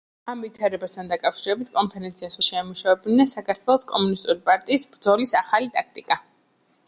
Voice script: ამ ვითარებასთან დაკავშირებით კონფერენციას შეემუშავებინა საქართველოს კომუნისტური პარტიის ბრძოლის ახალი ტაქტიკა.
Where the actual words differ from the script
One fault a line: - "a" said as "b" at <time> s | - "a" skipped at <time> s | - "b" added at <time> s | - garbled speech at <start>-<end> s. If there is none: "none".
none